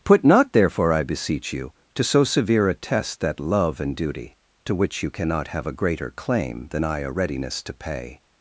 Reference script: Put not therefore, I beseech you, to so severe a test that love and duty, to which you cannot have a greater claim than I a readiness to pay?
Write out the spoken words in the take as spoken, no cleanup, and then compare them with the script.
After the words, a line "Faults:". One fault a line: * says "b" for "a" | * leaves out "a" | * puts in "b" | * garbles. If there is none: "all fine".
Put not therefore, I beseech you, to so severe a test that love and duty, to which you cannot have a greater claim than I a readiness to pay?
Faults:
all fine